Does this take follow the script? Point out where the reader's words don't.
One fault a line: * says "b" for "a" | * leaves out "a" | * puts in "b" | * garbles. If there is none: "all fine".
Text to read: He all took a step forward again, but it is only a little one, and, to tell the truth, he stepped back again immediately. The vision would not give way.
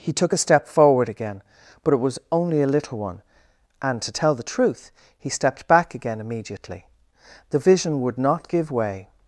* leaves out "all"
* says "was" for "is"